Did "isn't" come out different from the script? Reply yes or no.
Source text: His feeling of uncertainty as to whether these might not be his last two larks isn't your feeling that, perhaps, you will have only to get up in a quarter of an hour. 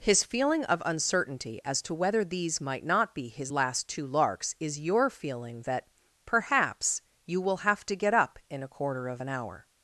yes